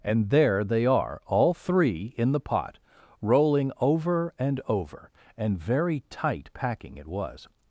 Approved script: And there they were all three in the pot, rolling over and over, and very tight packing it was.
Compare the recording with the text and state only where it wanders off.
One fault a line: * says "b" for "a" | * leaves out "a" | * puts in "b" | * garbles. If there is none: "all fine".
* says "are" for "were"